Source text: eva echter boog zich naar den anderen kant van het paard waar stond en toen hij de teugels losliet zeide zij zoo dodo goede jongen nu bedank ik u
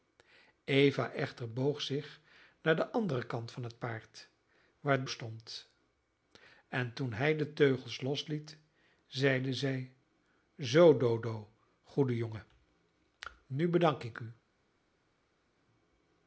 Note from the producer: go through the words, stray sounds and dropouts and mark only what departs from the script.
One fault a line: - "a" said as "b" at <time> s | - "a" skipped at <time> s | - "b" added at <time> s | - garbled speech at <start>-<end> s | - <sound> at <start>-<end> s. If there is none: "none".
none